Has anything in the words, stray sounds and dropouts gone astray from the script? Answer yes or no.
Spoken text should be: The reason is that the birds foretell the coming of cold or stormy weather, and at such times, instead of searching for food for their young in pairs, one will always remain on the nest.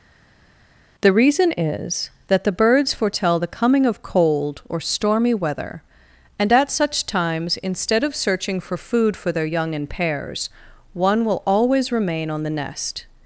no